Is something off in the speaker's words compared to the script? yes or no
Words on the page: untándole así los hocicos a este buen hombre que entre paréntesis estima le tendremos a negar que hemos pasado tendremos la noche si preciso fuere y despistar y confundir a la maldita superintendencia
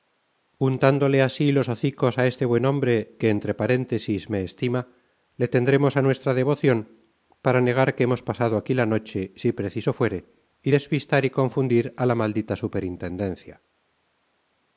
yes